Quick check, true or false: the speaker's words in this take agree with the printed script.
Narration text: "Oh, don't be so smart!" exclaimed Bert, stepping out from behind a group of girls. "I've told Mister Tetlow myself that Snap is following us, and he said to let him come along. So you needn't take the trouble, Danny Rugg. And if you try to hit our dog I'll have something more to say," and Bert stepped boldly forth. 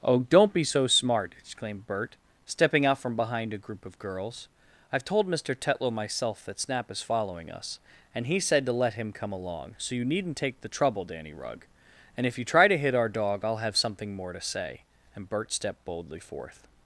true